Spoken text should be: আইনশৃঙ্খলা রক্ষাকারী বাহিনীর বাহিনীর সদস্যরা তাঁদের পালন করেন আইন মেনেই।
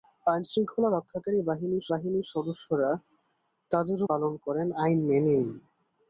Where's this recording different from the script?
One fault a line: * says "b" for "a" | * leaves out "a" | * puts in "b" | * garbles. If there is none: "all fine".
all fine